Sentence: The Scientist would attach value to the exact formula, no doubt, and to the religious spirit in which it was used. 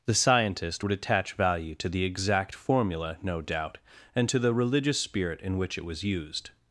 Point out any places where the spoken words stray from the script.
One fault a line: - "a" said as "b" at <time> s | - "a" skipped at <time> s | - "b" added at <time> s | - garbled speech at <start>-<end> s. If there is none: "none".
none